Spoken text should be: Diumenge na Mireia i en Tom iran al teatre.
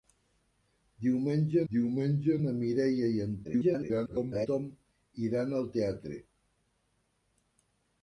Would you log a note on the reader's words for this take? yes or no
yes